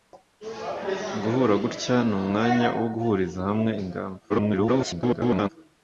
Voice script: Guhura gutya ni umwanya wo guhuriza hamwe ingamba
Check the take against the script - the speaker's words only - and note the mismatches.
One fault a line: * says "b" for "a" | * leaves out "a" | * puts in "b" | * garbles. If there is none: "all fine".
* garbles